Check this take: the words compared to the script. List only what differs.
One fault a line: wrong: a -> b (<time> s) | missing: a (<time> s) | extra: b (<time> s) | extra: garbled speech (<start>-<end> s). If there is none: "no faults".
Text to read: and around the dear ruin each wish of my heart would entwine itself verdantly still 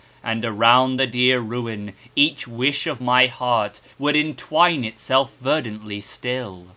no faults